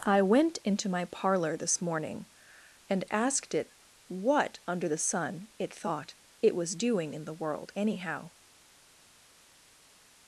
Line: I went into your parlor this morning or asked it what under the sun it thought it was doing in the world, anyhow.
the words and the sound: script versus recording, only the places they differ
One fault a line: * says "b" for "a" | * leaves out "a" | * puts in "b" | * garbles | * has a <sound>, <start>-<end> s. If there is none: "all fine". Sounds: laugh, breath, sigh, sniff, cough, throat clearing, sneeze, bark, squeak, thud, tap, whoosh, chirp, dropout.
* says "my" for "your"
* says "and" for "or"